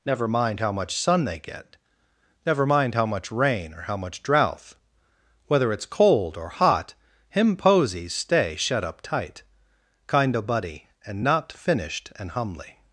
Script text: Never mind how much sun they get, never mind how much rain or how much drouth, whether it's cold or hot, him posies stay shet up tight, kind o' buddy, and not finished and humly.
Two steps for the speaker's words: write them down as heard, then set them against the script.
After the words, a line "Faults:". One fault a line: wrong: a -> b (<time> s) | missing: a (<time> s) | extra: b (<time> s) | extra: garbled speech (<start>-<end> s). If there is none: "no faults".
Never mind how much sun they get, never mind how much rain or how much drouth, whether it's cold or hot, him posies stay shet up tight, kind o' buddy, and not finished and humly.
Faults:
no faults